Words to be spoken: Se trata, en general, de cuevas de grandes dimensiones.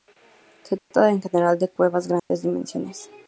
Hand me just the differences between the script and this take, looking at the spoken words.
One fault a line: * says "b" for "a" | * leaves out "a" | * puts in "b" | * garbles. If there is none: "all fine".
all fine